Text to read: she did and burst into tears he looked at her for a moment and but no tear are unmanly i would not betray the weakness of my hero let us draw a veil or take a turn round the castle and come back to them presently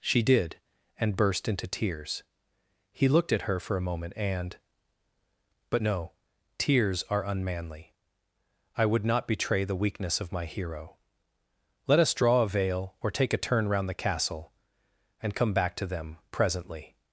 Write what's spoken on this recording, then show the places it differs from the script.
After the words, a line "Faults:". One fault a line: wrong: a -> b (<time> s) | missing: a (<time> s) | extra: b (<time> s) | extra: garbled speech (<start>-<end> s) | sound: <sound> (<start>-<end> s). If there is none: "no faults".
she did and burst into tears he looked at her for a moment and but no tears are unmanly i would not betray the weakness of my hero let us draw a veil or take a turn round the castle and come back to them presently
Faults:
wrong: tear -> tears (6.6 s)